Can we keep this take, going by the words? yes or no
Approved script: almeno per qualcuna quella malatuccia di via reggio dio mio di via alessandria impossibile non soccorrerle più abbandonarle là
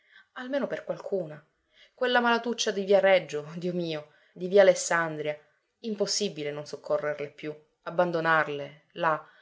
yes